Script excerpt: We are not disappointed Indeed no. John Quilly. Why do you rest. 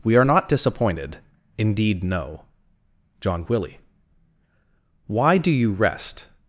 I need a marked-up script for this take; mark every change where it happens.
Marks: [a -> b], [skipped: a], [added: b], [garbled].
We are not disappointed Indeed no. John Quilly. Why do you rest.